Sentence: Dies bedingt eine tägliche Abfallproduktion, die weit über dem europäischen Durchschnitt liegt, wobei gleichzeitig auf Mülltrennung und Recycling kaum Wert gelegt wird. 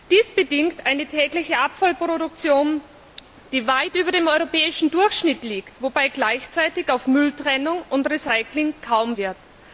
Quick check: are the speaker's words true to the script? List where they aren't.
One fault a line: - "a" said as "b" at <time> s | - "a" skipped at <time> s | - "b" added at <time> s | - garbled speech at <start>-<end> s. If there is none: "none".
- "Wert gelegt" skipped at 9.2 s